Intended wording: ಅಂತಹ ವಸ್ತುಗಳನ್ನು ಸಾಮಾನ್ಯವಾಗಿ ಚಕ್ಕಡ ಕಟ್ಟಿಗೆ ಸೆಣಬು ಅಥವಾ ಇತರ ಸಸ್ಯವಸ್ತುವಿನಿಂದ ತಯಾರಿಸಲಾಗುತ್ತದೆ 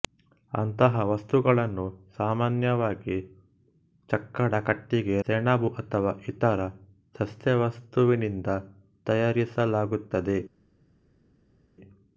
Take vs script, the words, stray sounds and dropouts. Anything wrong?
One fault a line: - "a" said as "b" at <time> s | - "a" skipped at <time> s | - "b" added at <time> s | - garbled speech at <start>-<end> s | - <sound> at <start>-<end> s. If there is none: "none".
none